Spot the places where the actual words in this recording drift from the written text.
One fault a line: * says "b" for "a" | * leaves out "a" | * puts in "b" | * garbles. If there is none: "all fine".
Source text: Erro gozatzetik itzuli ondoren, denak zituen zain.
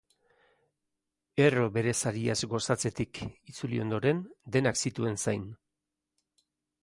* puts in "bere sariaz"